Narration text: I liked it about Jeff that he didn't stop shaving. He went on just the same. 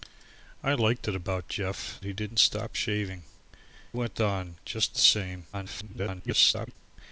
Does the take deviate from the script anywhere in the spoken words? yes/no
yes